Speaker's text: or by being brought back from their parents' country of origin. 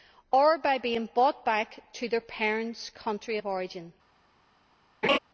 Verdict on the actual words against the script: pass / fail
fail